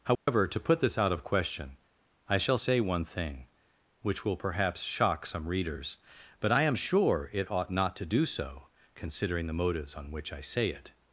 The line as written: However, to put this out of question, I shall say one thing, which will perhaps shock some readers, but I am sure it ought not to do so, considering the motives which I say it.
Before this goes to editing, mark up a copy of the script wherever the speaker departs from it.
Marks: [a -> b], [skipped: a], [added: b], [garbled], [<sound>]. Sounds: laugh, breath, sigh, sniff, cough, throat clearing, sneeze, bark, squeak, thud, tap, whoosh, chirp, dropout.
However, [dropout] to put this out of question, I shall say one thing, which will perhaps shock some readers, but I am sure it ought not to do so, considering the motives [added: on] which I say it.